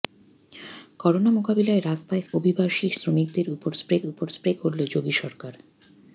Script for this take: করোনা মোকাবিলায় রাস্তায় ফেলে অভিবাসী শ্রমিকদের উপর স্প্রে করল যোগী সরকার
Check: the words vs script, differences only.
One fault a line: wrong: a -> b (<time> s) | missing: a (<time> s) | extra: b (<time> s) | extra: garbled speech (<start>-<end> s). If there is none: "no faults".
missing: ফেলে (2.2 s)
extra: উপর স্প্রে (4.1 s)